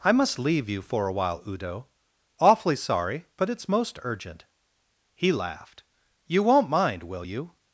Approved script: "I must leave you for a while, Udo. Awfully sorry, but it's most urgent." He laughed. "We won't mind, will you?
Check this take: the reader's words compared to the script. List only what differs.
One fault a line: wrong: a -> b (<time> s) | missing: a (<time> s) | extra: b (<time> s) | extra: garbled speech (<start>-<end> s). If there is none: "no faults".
wrong: We -> You (6.2 s)